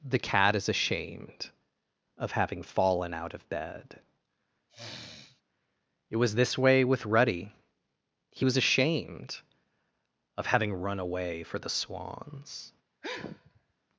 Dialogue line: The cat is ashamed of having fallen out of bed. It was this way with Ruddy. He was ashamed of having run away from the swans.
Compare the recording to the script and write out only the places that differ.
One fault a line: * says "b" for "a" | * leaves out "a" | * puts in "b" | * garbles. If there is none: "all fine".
* says "for" for "from"